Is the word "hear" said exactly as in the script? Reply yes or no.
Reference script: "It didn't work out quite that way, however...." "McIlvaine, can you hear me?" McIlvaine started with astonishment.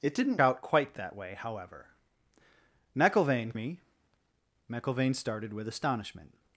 no